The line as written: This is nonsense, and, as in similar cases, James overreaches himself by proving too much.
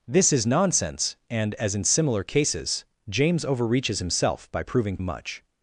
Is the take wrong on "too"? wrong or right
wrong